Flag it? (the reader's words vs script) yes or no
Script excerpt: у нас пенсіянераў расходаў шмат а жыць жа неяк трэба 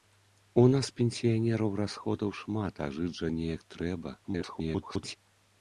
yes